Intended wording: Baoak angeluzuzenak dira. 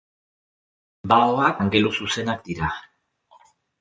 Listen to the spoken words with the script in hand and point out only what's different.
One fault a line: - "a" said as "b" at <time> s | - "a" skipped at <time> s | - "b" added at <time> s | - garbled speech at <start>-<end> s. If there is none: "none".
none